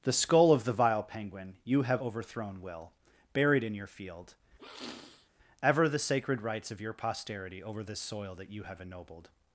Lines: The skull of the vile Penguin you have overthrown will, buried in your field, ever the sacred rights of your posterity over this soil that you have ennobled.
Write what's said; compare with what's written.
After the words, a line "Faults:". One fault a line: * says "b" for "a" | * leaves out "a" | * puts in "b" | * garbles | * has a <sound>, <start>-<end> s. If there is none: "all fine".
The skull of the vile Penguin you have overthrown will, buried in your field, ever the sacred rights of your posterity over this soil that you have ennobled.
Faults:
* has a sniff, 4.6-5.3 s